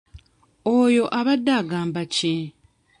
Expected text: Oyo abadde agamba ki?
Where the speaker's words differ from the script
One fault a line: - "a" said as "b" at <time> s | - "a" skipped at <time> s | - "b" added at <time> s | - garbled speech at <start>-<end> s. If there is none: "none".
none